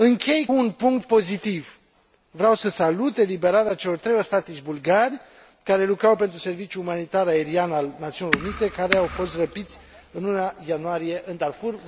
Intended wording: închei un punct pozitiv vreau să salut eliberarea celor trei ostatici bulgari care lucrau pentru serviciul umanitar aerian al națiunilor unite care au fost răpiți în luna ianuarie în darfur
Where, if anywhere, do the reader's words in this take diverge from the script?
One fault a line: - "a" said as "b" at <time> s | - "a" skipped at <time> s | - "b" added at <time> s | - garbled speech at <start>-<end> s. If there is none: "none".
none